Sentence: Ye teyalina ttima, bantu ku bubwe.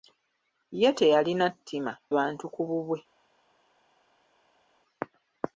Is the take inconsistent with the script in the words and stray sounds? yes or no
no